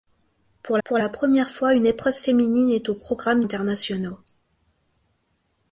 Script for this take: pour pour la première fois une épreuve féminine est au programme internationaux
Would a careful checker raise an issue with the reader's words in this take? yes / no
no